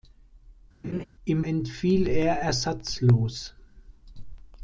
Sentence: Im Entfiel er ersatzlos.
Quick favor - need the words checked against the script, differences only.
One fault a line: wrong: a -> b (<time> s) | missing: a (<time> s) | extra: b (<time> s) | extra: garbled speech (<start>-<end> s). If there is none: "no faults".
no faults